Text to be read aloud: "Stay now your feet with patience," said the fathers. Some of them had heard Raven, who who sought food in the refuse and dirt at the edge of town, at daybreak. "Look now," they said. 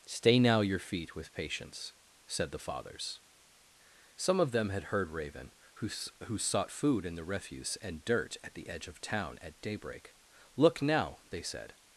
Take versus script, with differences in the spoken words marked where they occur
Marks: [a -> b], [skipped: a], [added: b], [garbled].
"Stay now your feet with patience," said the fathers. Some of them had heard Raven, who who sought food in the refuse and dirt at the edge of town, at daybreak. "Look now," they said.